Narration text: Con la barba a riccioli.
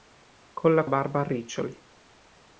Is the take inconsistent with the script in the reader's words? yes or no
no